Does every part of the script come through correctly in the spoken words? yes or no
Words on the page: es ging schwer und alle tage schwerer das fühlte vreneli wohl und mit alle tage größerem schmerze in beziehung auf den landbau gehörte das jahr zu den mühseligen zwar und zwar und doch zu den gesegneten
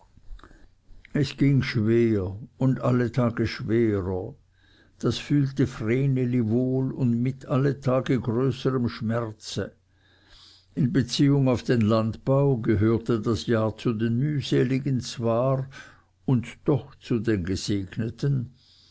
no